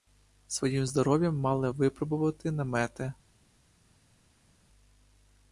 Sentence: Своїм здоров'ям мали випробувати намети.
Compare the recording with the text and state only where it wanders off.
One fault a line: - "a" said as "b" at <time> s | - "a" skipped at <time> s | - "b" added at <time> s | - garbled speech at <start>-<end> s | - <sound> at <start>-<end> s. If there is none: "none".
none